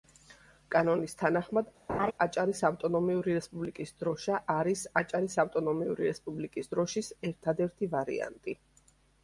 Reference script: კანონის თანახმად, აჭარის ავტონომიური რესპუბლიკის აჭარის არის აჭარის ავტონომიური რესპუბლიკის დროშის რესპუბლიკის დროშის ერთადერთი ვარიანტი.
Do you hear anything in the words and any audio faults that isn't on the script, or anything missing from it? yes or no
yes